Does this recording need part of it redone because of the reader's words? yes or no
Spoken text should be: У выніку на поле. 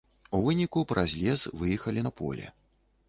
yes